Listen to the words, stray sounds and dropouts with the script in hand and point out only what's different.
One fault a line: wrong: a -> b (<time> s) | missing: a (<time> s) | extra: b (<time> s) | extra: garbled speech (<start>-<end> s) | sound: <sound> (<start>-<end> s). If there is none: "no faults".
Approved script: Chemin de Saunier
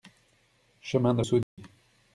sound: dropout (1.4-1.6 s)